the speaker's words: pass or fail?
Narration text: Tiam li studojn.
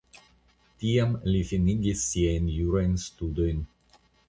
fail